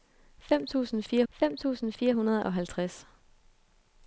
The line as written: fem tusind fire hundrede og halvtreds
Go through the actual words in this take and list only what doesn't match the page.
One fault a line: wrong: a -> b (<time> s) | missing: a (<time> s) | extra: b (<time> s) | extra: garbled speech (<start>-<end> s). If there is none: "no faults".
extra: fem tusind fire (1.3 s)